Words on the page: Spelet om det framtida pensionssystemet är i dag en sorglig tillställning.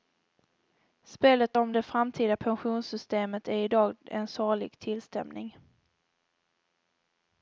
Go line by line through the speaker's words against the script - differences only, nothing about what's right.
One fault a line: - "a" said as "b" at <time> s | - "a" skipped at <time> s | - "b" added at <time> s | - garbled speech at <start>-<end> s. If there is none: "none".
none